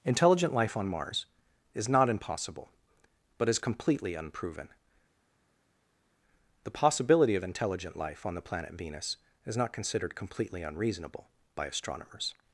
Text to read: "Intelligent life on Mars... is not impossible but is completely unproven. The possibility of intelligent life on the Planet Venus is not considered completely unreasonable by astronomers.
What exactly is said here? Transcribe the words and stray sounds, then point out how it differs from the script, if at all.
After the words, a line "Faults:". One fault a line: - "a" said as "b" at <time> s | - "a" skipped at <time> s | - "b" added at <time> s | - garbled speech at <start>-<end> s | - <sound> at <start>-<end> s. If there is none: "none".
"Intelligent life on Mars... is not impossible but is completely unproven. The possibility of intelligent life on the Planet Venus is not considered completely unreasonable by astronomers.
Faults:
none